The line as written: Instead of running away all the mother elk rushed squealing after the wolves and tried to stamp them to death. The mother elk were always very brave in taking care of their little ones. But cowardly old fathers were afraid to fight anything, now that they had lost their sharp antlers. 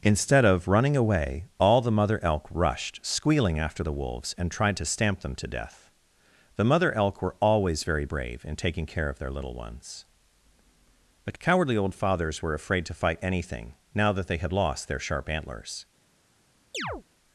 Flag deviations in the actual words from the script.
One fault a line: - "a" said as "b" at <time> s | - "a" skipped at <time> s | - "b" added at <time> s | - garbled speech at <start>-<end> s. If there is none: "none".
none